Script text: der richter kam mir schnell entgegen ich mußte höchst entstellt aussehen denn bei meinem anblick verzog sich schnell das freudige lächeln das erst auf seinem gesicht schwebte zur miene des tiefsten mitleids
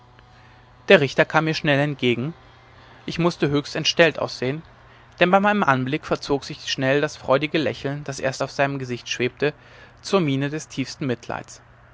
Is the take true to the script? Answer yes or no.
yes